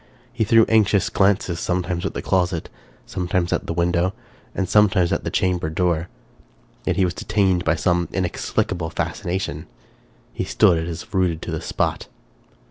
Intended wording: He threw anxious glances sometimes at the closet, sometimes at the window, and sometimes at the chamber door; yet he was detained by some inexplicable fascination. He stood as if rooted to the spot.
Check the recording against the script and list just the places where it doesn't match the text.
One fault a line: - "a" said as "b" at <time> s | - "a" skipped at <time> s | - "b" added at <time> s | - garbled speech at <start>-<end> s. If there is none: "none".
none